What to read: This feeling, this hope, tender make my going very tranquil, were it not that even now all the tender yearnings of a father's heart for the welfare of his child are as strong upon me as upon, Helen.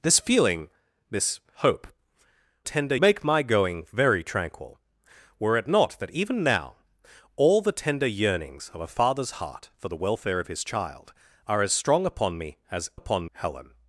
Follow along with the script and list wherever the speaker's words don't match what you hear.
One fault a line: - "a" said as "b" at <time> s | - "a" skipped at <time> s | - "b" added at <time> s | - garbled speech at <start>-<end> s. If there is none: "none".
none